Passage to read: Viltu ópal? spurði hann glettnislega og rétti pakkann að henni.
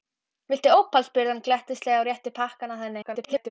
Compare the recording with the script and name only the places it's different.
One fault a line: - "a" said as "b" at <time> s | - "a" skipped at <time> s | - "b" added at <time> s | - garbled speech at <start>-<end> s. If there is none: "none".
- garbled speech at 3.0-3.5 s